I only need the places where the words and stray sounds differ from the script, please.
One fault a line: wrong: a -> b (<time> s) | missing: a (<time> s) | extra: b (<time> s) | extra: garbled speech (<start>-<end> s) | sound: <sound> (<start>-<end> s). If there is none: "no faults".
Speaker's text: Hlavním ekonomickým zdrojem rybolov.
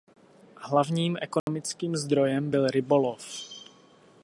sound: dropout (1.4-1.5 s)
extra: byl (2.5 s)